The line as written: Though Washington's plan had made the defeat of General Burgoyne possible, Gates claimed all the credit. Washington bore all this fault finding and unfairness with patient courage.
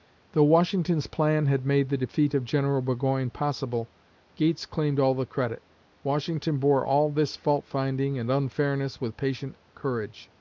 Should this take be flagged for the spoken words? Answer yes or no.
no